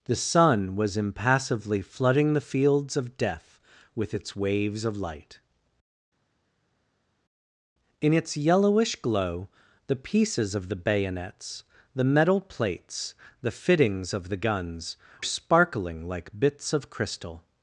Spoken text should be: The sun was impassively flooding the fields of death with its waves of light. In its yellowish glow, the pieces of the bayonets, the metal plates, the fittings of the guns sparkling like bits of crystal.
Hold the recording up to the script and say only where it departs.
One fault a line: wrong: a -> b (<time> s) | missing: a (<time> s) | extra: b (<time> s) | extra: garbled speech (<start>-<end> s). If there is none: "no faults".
no faults